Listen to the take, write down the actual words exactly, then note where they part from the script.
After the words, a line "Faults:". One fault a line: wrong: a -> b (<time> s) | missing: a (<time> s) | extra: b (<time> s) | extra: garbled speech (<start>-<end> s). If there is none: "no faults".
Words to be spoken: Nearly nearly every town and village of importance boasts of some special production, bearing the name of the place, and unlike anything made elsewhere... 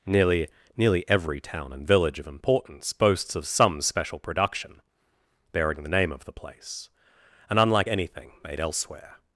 Nearly nearly every town and village of importance boasts of some special production, bearing the name of the place, and unlike anything made elsewhere...
Faults:
no faults